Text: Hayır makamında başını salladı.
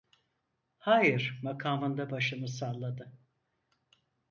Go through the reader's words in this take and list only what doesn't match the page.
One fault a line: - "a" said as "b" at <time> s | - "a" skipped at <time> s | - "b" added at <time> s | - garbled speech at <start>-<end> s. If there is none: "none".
none